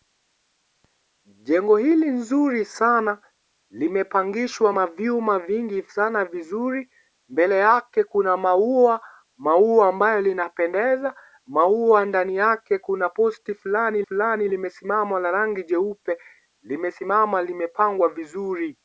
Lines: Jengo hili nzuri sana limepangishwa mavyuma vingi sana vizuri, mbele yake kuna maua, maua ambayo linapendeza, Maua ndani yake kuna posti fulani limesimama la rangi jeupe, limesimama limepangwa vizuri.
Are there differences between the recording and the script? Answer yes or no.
yes